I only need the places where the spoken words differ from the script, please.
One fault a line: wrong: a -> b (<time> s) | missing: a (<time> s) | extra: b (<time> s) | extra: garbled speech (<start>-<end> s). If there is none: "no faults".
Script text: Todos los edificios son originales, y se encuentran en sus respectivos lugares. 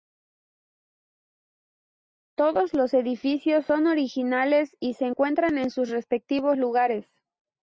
no faults